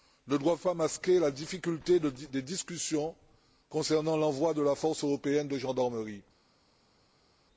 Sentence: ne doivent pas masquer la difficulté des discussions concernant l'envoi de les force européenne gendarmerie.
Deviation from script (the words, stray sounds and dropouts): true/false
true